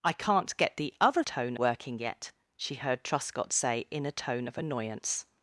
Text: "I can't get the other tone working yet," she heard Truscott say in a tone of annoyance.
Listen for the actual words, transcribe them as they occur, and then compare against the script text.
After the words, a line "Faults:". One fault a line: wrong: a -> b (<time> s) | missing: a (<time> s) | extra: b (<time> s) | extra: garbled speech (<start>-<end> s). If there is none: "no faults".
"I can't get the other tone working yet," she heard Truscott say in a tone of annoyance.
Faults:
no faults